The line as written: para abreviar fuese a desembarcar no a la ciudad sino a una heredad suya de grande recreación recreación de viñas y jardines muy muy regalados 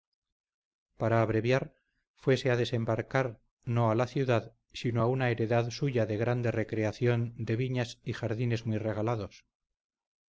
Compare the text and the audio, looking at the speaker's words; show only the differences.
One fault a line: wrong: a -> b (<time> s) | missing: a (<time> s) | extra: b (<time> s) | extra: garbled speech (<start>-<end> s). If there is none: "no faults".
missing: recreación (7.3 s)
missing: muy (8.8 s)